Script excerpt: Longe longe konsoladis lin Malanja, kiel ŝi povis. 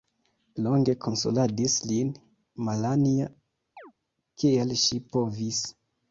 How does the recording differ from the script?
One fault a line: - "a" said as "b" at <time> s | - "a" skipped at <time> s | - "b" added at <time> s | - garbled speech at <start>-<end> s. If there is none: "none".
- "longe" skipped at 0.9 s